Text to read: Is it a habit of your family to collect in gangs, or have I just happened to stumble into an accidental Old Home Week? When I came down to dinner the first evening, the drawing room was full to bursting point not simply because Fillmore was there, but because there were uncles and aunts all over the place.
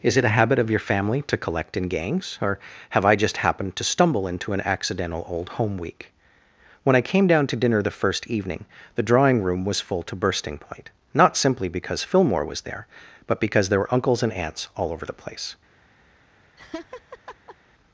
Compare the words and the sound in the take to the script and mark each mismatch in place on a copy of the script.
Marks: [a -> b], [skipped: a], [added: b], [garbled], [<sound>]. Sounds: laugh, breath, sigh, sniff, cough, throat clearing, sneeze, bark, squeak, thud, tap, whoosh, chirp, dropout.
Is it a habit of your family to collect in gangs, or have I just happened to stumble into an accidental Old Home Week? When I came down to dinner the first evening, the drawing room was full to bursting point not simply because Fillmore was there, but because there were uncles and aunts all over the place. [laugh]